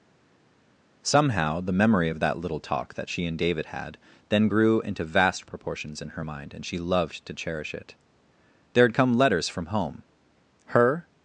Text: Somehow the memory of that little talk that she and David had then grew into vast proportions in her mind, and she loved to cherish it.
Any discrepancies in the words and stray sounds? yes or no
yes